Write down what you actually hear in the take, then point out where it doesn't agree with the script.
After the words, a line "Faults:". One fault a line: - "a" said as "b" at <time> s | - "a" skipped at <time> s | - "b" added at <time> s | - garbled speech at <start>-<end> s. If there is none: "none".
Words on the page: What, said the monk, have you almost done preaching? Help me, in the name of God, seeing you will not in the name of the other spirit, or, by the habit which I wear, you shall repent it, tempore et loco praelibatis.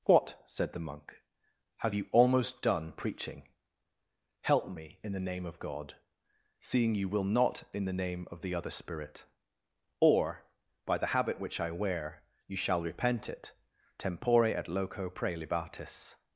What, said the monk, have you almost done preaching? Help me, in the name of God, seeing you will not in the name of the other spirit, or, by the habit which I wear, you shall repent it, tempore et loco praelibatis.
Faults:
none